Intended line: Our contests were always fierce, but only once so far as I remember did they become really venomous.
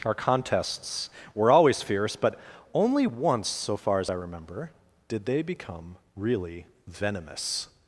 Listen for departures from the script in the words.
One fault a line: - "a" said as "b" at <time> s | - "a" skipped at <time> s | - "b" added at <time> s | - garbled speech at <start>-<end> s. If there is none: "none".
none